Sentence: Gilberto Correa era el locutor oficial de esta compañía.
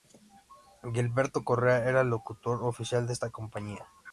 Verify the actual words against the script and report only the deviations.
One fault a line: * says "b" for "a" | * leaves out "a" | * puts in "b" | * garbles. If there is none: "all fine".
all fine